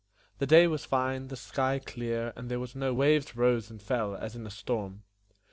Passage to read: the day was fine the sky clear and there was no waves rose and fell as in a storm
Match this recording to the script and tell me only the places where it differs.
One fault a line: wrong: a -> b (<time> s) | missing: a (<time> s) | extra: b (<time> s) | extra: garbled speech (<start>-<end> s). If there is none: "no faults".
no faults